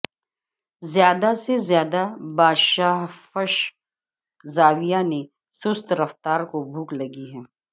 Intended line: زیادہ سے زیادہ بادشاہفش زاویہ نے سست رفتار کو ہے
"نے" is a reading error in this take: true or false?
false